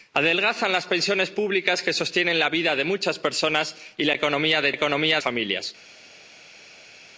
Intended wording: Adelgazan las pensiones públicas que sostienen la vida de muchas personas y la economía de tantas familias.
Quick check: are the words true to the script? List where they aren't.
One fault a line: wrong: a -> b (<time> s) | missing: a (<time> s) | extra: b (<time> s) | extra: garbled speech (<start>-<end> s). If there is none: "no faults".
wrong: tantas -> economía (4.7 s)